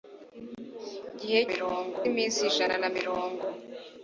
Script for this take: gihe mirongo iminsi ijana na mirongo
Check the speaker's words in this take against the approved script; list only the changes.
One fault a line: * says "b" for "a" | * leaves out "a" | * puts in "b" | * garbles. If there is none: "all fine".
all fine